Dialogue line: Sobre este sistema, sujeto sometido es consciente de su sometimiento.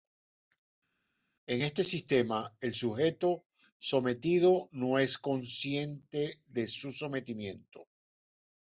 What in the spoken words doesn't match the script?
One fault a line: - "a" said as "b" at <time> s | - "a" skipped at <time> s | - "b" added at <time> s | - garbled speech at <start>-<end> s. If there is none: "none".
- "Sobre" said as "En" at 1.5 s
- "el" added at 2.6 s
- "no" added at 4.7 s